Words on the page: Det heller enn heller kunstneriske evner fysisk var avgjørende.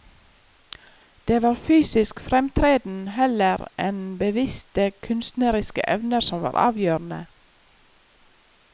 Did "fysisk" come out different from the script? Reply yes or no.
yes